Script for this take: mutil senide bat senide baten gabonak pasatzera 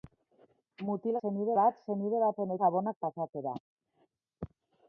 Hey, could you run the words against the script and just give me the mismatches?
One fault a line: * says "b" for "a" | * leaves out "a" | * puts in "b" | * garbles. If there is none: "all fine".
all fine